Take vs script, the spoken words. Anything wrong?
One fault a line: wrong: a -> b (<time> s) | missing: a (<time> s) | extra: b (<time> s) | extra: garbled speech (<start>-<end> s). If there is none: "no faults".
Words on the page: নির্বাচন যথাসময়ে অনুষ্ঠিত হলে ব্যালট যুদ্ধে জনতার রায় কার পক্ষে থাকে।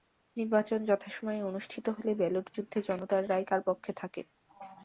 no faults